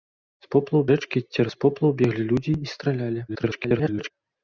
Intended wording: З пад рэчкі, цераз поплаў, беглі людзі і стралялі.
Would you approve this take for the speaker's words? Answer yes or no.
no